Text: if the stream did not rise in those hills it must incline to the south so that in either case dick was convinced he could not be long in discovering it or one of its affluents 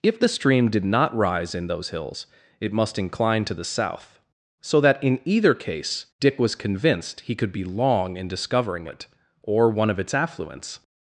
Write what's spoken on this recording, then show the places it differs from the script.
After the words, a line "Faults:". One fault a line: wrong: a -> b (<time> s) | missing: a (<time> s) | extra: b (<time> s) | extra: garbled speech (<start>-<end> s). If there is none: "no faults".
if the stream did not rise in those hills it must incline to the south so that in either case dick was convinced he could be long in discovering it or one of its affluents
Faults:
missing: not (7.5 s)